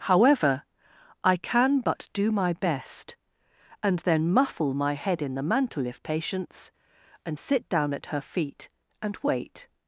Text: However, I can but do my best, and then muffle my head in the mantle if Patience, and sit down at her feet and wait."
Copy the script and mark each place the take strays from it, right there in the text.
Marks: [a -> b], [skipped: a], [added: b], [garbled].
However, I can but do my best, and then muffle my head in the mantle if Patience, and sit down at her feet and wait."